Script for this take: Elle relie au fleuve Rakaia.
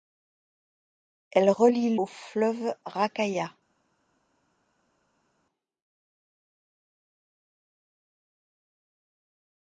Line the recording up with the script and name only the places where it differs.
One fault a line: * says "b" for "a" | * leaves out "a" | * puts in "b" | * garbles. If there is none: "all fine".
all fine